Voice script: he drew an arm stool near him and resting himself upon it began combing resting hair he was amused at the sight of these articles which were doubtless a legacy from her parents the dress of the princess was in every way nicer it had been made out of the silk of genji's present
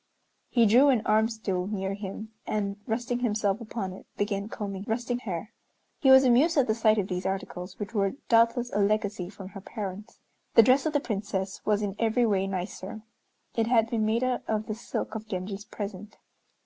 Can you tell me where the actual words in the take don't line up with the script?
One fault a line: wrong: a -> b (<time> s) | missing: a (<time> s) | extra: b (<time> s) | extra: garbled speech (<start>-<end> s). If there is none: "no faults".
no faults